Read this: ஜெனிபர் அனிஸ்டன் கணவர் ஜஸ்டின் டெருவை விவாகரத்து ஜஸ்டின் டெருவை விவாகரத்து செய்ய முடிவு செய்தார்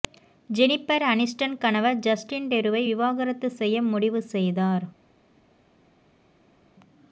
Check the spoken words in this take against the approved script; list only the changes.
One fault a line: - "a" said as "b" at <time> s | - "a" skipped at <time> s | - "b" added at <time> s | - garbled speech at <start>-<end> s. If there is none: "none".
- "ஜஸ்டின் டெருவை விவாகரத்து" skipped at 3.5 s